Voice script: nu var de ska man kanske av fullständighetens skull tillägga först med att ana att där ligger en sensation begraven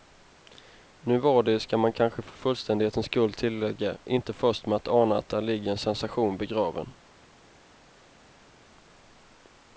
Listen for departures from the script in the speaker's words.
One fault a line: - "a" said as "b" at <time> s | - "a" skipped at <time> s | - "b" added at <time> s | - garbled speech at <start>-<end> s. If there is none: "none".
- "av" said as "för" at 2.2 s
- "inte" added at 4.0 s